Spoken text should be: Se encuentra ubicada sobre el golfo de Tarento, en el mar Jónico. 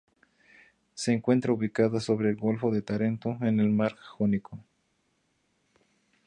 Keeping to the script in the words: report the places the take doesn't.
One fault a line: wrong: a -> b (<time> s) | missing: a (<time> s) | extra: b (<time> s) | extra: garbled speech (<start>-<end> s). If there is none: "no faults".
no faults